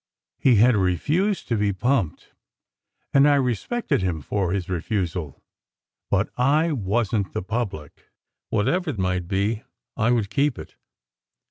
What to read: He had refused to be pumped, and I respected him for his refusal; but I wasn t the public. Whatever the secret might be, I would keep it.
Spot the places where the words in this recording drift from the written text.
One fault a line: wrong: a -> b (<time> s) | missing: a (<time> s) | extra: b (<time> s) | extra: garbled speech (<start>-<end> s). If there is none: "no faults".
missing: the secret (8.9 s)